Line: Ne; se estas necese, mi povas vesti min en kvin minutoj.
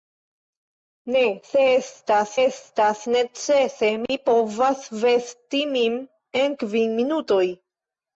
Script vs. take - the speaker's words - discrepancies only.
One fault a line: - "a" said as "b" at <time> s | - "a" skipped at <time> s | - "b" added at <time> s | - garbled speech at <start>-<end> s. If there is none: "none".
- "estas" added at 2.4 s